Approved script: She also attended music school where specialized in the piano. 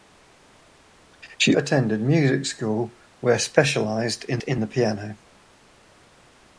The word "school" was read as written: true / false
true